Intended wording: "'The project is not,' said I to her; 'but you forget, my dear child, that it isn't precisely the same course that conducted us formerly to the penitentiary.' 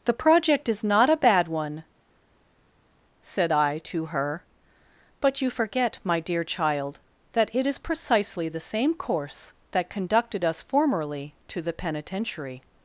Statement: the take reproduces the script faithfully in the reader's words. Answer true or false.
false